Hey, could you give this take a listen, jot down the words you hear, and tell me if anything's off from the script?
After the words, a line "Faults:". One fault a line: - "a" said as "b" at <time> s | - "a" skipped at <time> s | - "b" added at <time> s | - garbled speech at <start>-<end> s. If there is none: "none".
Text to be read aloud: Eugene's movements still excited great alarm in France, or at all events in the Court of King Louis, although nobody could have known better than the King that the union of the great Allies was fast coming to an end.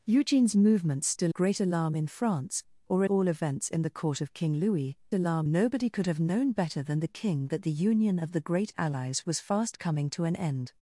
Eugene's movements still great alarm in France, or all events in the Court of King Louis, alarm nobody could have known better than the King that the union of the great Allies was fast coming to an end.
Faults:
- "excited" skipped at 1.3 s
- "at" skipped at 3.0 s
- "although" said as "alarm" at 5.1 s